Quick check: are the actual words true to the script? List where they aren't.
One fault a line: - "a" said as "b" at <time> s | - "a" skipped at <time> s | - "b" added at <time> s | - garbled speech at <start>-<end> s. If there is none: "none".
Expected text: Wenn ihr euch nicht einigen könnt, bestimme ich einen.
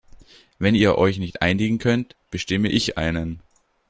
none